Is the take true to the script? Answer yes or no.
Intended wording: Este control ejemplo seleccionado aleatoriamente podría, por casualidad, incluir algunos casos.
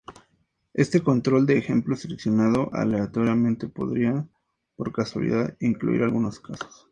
no